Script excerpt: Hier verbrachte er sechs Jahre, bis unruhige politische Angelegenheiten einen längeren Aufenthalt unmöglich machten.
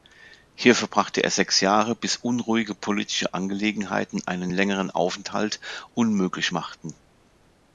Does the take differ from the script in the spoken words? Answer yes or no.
no